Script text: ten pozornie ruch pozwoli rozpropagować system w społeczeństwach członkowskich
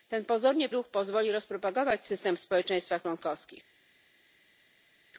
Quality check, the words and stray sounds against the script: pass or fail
pass